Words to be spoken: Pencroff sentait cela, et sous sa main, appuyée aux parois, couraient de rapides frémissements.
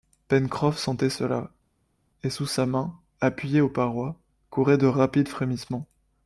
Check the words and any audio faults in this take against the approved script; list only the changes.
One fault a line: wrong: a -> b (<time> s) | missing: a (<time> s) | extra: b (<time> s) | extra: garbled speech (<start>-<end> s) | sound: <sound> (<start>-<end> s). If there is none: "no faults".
no faults